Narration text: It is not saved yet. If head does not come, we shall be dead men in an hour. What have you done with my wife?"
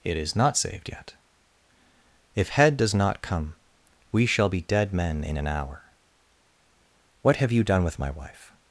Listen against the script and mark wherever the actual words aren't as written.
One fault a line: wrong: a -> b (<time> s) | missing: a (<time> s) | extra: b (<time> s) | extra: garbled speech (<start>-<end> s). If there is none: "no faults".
no faults